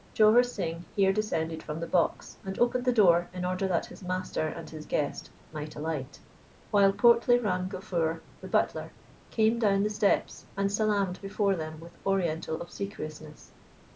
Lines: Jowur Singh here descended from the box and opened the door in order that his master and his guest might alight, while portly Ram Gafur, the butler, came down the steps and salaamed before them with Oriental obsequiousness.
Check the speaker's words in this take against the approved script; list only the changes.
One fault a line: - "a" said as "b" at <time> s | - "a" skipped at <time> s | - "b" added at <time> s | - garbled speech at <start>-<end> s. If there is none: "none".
none